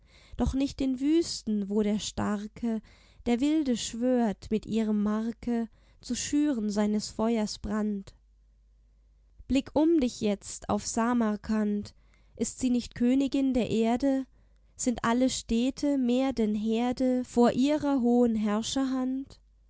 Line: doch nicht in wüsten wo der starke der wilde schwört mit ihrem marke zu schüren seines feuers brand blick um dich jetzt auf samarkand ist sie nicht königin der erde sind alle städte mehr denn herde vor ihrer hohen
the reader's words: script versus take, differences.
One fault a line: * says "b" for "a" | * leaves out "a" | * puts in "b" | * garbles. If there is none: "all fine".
all fine